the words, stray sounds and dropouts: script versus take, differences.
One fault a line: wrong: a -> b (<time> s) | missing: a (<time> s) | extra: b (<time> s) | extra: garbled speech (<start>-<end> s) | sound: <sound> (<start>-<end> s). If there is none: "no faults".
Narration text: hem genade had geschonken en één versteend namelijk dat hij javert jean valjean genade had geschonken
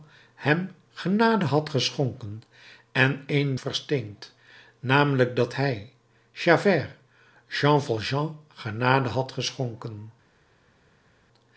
no faults